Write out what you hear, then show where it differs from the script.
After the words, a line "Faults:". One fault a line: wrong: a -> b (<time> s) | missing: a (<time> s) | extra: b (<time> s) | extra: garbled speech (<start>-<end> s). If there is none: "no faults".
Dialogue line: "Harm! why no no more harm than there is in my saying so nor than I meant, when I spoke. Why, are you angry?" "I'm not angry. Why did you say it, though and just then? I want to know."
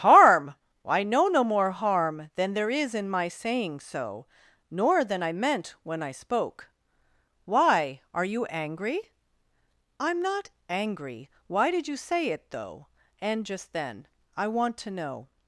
"Harm! I know no more harm than there is in my saying so nor than I meant, when I spoke. Why, are you angry?" "I'm not angry. Why did you say it, though and just then? I want to know."
Faults:
wrong: why no -> I know (0.8 s)